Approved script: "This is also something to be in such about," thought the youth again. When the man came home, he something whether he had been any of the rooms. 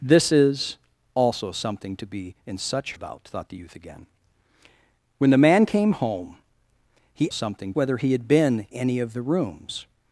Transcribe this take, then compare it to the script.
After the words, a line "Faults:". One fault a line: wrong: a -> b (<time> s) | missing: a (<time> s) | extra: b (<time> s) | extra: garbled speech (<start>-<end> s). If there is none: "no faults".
"This is also something to be in such about," thought the youth again. When the man came home, he something whether he had been any of the rooms.
Faults:
no faults